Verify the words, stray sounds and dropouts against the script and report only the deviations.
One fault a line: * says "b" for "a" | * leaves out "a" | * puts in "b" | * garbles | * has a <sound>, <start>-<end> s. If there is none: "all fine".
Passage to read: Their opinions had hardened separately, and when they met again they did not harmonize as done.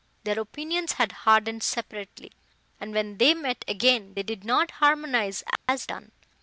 * has a dropout, 5.6-5.7 s